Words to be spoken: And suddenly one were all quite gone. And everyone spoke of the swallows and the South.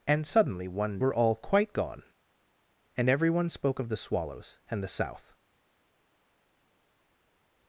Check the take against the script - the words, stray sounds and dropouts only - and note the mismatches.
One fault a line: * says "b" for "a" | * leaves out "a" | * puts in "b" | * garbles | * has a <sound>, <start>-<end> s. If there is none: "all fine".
all fine